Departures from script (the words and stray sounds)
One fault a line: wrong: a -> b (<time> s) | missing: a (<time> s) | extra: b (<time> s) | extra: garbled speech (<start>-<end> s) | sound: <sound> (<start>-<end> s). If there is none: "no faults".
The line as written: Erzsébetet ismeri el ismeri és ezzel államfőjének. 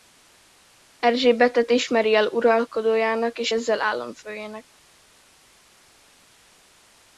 wrong: ismeri -> uralkodójának (2.3 s)